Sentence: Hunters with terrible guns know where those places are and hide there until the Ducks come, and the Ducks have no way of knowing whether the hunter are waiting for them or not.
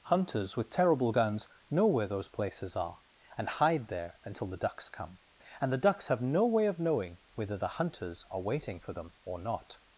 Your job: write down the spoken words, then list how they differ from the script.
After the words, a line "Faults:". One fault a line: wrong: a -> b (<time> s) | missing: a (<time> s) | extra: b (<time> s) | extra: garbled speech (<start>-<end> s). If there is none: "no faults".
Hunters with terrible guns know where those places are and hide there until the Ducks come, and the Ducks have no way of knowing whether the hunters are waiting for them or not.
Faults:
wrong: hunter -> hunters (7.8 s)